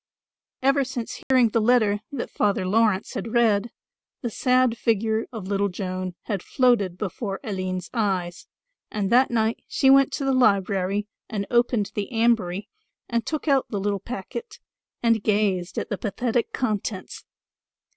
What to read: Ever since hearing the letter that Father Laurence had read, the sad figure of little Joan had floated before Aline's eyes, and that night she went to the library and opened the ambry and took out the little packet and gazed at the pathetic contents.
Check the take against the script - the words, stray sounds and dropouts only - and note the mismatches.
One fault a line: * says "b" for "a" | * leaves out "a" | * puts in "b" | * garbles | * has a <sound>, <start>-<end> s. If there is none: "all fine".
* has a dropout, 1.2-1.3 s